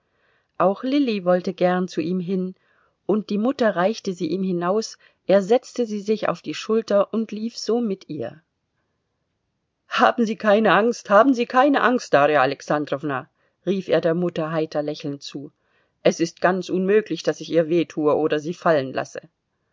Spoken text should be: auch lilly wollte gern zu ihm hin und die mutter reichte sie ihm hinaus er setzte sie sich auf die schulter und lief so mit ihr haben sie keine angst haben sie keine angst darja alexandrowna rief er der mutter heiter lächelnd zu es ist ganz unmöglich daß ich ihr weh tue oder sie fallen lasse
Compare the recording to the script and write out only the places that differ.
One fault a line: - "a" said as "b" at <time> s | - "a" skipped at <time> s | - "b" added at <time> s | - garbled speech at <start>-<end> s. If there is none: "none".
none